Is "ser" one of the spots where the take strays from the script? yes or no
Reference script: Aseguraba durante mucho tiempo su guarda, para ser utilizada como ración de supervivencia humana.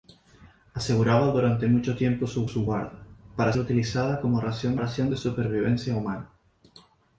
yes